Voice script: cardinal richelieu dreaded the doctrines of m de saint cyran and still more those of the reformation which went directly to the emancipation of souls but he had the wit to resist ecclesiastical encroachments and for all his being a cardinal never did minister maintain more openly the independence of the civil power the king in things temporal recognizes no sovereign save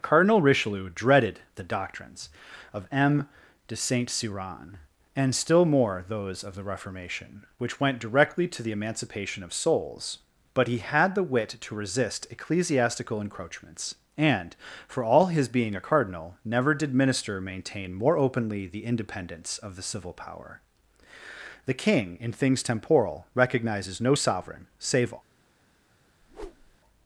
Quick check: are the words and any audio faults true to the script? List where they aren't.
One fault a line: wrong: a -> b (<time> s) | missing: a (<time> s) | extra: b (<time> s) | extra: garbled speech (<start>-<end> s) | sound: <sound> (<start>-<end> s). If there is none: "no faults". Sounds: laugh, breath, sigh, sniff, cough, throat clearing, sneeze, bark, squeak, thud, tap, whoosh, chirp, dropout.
sound: whoosh (26.2-26.8 s)